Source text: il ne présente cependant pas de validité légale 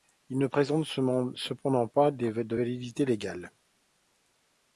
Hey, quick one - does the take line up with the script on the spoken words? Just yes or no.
yes